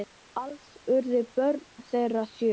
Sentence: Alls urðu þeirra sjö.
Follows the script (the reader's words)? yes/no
no